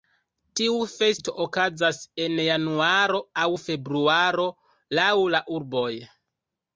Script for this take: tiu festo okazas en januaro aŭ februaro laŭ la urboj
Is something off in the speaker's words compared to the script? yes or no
no